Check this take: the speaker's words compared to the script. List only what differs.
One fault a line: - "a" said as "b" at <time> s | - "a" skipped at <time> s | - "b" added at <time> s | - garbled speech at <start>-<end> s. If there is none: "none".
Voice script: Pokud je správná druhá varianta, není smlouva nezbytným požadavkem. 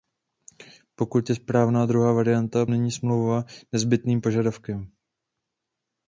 none